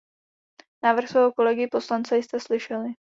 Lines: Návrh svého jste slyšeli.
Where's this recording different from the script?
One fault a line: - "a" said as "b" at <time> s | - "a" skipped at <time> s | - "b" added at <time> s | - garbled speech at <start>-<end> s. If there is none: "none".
- "kolegy poslance" added at 1.3 s